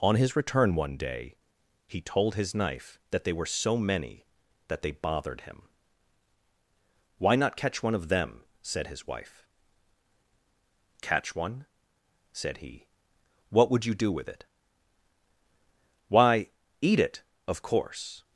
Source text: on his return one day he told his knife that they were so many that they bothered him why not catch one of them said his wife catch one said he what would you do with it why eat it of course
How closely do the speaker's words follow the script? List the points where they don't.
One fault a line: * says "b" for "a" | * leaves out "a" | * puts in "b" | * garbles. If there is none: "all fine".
all fine